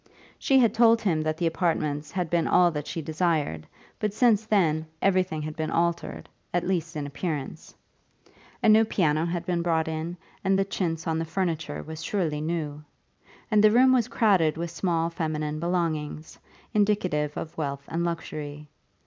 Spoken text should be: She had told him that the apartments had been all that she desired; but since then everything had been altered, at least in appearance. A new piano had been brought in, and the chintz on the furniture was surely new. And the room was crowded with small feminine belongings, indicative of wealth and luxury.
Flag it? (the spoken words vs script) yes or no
no